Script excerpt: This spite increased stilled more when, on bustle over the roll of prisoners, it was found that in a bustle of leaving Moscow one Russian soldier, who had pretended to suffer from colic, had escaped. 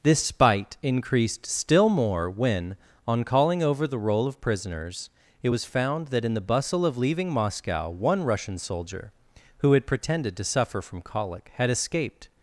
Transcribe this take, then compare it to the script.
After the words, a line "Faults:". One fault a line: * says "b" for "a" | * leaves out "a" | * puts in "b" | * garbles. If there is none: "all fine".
This spite increased still more when, on calling over the roll of prisoners, it was found that in the bustle of leaving Moscow one Russian soldier, who had pretended to suffer from colic, had escaped.
Faults:
* says "still" for "stilled"
* says "calling" for "bustle"
* says "the" for "a"